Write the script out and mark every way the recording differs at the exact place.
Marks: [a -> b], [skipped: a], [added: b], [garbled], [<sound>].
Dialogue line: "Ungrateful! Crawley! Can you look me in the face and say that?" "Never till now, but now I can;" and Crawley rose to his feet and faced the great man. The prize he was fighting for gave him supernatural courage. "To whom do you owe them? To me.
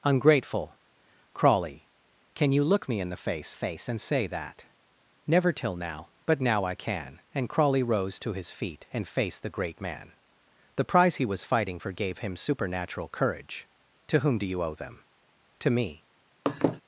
"Ungrateful! Crawley! Can you look me in the face [added: face] and say that?" "Never till now, but now I can;" and Crawley rose to his feet and faced the great man. The prize he was fighting for gave him supernatural courage. "To whom do you owe them? To me. [laugh]